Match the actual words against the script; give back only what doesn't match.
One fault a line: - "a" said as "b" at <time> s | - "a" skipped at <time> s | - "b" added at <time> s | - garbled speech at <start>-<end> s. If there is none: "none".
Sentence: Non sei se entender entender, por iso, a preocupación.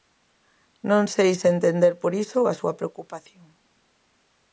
- "entender" skipped at 1.9 s
- "súa" added at 2.6 s